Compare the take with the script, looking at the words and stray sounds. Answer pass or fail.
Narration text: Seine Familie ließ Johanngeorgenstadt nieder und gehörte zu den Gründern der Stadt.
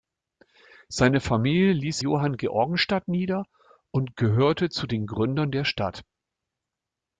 pass